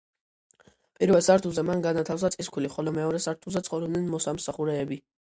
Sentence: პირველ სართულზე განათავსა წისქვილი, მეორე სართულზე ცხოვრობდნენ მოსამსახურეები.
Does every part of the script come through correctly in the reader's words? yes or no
no